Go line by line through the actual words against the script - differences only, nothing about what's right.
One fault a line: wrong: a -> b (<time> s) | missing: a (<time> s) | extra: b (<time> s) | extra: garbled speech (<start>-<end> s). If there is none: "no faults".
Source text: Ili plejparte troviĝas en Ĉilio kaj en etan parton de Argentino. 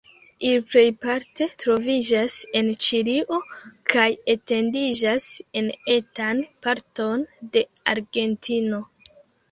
extra: etendiĝas (4.3 s)